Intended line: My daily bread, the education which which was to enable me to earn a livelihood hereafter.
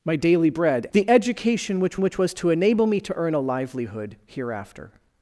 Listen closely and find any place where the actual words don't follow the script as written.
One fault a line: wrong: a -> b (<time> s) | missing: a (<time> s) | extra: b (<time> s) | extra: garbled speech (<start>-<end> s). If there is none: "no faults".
no faults